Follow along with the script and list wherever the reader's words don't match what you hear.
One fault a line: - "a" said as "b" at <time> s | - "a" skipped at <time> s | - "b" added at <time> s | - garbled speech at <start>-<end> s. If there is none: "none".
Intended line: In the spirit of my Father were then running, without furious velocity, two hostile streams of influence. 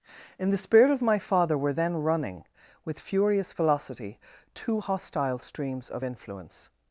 - "without" said as "with" at 2.9 s